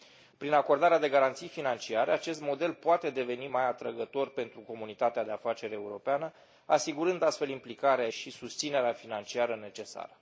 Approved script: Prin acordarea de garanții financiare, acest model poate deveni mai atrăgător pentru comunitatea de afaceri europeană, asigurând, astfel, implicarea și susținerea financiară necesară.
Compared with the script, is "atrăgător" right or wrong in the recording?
right